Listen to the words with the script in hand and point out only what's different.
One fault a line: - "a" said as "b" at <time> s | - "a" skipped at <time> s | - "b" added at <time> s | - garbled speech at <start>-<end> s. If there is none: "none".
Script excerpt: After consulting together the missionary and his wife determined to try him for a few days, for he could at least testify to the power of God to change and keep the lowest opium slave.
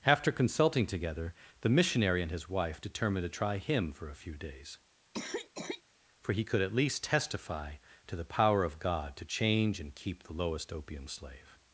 none